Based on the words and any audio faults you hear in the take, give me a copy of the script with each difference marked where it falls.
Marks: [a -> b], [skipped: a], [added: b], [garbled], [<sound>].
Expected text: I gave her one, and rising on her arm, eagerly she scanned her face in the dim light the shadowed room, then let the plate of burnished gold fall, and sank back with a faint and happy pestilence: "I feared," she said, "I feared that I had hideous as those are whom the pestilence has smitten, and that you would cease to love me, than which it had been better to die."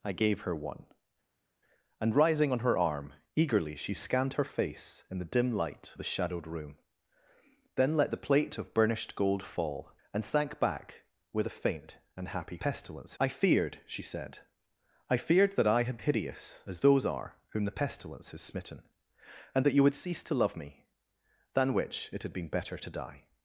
I gave her one, and rising on her arm, eagerly she scanned her face in the dim light the shadowed room, then let the plate of burnished gold fall, and sank back with a faint and happy pestilence: "I feared," she said, "I feared that I had hideous as those are whom the pestilence has smitten, and that you would cease to love me, than which it had been better to die."